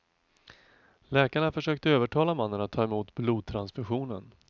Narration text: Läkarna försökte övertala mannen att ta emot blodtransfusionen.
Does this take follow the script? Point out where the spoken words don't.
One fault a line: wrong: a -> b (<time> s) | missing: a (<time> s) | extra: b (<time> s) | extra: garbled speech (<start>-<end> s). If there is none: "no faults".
no faults